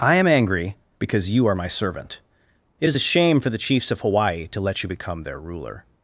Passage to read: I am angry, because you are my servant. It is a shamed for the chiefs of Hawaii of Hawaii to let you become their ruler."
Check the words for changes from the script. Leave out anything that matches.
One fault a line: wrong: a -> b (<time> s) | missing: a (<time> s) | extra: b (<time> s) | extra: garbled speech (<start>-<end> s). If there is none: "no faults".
wrong: shamed -> shame (3.0 s)
missing: of Hawaii (4.5 s)